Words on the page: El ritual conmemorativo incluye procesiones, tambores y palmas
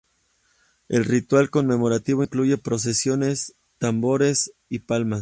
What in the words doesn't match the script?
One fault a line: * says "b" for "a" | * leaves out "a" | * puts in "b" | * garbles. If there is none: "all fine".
all fine